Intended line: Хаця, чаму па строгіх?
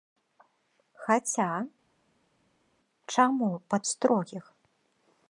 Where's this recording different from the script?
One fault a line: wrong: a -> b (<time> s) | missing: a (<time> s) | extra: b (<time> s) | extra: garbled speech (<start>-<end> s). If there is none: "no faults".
no faults